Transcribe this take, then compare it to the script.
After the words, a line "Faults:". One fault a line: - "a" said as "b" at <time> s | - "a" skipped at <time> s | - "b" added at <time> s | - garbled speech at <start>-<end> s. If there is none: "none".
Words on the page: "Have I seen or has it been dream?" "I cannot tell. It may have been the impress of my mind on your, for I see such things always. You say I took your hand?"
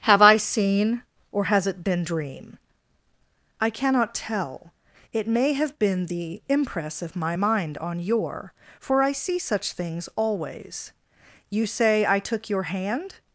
"Have I seen or has it been dream?" "I cannot tell. It may have been the impress of my mind on your, for I see such things always. You say I took your hand?"
Faults:
none